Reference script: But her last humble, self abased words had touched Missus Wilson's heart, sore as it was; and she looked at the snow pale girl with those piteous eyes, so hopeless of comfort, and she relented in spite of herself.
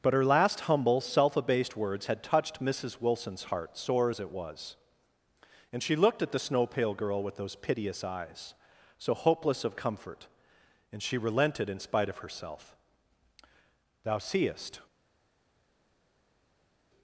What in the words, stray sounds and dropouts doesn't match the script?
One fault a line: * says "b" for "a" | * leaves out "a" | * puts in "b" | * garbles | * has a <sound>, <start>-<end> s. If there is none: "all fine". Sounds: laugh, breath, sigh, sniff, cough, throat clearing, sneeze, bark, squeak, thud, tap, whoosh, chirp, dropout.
* puts in "Thou seest"